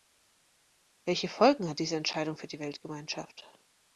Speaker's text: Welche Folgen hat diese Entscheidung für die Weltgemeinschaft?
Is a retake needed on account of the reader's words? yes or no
no